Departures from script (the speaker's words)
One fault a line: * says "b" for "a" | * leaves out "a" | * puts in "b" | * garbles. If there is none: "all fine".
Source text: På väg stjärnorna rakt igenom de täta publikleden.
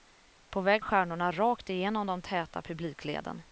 all fine